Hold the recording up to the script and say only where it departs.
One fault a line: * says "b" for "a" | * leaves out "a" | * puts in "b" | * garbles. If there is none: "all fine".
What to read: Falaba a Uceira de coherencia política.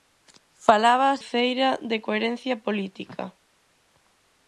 all fine